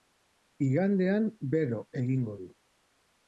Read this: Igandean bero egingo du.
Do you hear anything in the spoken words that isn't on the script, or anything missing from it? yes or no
no